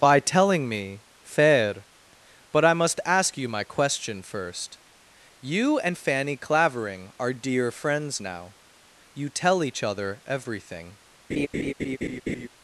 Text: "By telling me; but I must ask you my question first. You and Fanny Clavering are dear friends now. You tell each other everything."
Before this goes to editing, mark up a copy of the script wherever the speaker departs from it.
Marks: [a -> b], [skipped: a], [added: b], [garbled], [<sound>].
"By telling me; [added: fair] but I must ask you my question first. You and Fanny Clavering are dear friends now. You tell each other everything." [laugh]